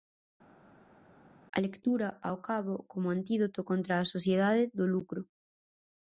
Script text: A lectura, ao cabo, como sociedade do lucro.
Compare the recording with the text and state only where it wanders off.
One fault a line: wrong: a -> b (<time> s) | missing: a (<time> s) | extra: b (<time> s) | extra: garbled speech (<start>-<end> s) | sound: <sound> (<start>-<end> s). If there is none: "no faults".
extra: antídoto contra a (3.2 s)